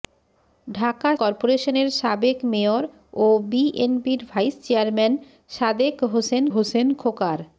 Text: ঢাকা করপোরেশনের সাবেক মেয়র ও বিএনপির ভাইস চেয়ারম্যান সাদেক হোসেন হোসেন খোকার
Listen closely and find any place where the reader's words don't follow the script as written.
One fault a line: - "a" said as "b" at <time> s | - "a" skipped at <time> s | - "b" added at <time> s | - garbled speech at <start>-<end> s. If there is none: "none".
none